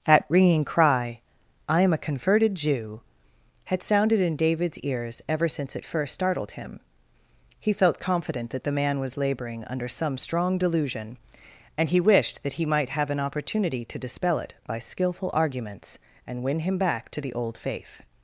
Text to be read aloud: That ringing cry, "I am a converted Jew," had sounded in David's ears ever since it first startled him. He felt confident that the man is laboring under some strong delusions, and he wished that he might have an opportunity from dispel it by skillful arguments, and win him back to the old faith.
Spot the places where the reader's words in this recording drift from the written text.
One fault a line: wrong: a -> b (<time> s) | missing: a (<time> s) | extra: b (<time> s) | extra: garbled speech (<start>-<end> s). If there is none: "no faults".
wrong: is -> was (9.0 s)
wrong: delusions -> delusion (10.6 s)
wrong: from -> to (13.9 s)